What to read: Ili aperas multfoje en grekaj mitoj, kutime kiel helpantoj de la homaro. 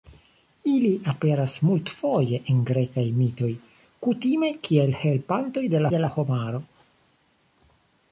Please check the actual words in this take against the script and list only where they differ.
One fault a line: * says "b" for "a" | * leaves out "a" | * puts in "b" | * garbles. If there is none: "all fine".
* puts in "de"